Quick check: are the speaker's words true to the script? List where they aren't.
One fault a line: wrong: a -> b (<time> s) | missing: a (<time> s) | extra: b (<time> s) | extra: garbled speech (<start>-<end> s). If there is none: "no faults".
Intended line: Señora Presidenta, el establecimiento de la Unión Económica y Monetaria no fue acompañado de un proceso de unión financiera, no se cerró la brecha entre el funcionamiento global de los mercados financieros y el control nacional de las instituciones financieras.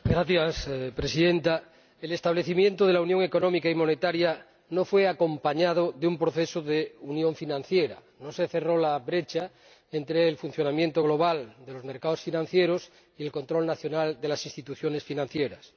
no faults